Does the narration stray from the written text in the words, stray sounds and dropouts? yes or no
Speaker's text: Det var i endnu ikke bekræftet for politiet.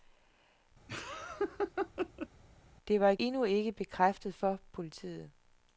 yes